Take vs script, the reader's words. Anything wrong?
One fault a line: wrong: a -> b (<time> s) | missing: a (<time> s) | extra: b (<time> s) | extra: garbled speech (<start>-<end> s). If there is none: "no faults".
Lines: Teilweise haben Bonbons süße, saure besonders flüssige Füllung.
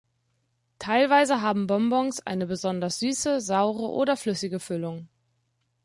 extra: eine besonders (2.2 s)
wrong: besonders -> oder (3.9 s)